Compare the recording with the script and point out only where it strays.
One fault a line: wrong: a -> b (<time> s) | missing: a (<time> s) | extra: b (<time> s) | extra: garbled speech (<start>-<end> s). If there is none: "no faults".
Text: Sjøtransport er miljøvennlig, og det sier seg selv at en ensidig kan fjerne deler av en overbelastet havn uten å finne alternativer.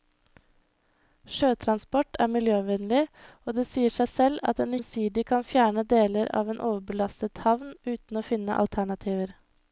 no faults